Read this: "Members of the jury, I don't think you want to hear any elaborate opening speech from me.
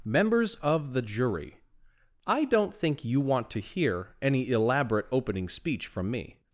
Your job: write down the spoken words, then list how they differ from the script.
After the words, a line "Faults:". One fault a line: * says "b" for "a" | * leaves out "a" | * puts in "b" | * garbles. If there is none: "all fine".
"Members of the jury, I don't think you want to hear any elaborate opening speech from me.
Faults:
all fine